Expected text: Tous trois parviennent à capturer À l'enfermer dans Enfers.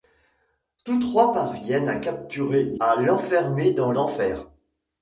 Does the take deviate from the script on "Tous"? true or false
false